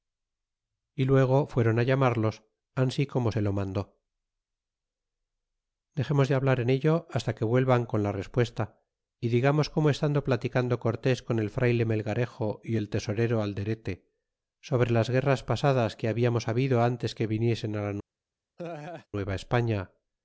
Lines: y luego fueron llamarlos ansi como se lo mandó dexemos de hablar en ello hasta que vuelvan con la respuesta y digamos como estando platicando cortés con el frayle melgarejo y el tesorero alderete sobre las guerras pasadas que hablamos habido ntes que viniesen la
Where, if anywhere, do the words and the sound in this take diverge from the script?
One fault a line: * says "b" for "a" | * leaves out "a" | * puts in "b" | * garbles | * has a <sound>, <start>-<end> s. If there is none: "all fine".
* has a laugh, 18.6-19.1 s